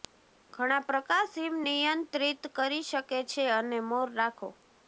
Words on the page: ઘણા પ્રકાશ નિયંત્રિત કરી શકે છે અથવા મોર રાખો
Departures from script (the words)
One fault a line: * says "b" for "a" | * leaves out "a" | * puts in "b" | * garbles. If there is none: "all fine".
* puts in "હિમ"
* says "અને" for "અથવા"